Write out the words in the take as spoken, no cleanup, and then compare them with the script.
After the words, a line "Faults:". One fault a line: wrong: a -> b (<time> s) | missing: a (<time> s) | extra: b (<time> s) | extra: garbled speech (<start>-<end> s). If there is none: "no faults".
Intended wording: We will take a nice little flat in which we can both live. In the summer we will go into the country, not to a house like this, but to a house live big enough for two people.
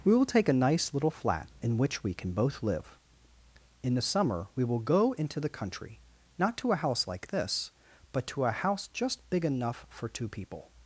We will take a nice little flat in which we can both live. In the summer we will go into the country, not to a house like this, but to a house just big enough for two people.
Faults:
wrong: live -> just (8.9 s)